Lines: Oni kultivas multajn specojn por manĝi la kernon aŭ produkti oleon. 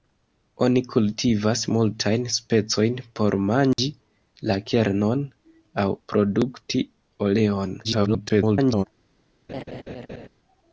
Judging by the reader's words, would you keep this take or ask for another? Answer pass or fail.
fail